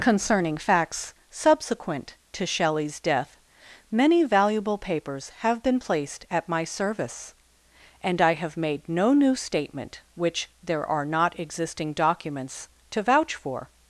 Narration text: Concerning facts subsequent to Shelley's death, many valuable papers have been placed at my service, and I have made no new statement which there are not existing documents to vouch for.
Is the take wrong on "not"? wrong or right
right